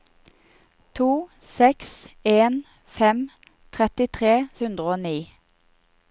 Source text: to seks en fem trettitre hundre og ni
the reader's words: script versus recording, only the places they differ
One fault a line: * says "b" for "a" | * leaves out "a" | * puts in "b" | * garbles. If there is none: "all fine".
all fine